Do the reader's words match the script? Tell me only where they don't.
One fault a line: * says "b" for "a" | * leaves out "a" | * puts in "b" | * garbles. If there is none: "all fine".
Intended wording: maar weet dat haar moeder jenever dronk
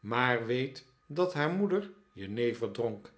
all fine